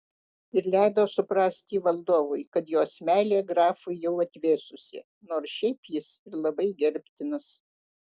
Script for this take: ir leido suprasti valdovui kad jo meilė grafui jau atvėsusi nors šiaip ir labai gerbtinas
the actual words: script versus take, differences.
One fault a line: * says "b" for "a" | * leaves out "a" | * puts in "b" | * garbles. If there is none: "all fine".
* says "jos" for "jo"
* puts in "jis"